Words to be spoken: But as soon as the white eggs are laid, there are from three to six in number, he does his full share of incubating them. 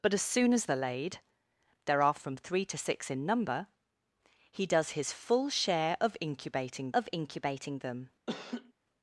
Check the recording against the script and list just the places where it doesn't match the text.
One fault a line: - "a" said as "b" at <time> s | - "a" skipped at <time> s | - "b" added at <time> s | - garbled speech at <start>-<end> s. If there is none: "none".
- "the white eggs" skipped at 0.7 s
- "of incubating" added at 6.9 s